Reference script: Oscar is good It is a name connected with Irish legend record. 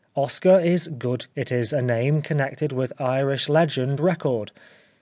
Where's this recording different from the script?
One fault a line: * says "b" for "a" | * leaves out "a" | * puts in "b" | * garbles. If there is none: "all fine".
all fine